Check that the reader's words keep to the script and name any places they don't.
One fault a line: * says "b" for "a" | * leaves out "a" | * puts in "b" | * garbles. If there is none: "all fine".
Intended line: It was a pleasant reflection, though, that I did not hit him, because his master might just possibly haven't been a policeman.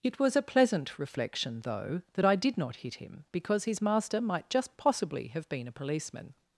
* says "have" for "haven't"